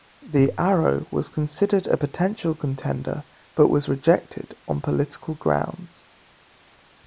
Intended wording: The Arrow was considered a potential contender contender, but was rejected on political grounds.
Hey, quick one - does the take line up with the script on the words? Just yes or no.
no